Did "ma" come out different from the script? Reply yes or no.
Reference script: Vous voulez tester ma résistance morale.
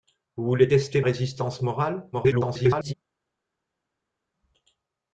yes